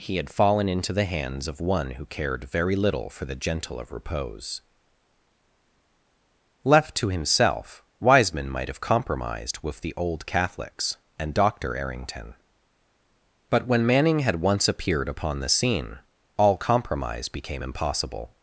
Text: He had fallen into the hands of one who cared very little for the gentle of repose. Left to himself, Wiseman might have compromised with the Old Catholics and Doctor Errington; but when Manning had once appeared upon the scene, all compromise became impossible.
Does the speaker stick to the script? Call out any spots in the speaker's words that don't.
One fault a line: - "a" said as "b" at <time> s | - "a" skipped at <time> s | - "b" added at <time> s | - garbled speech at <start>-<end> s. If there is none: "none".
none